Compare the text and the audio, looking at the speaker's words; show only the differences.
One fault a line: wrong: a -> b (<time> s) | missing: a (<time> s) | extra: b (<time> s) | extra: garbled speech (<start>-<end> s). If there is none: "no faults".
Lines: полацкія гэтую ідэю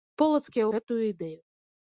no faults